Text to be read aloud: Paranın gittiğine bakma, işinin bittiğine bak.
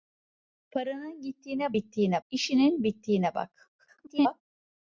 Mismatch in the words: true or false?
true